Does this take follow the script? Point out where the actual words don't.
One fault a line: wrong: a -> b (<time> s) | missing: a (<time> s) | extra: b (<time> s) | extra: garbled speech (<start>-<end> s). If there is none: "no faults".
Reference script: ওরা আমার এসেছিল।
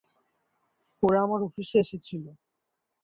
extra: অফিসে (1.5 s)